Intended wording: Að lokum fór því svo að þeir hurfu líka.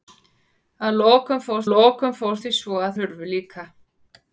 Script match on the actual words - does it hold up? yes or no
no